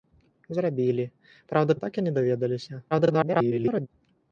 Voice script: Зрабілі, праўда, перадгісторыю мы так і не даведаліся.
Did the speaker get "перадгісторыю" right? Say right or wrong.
wrong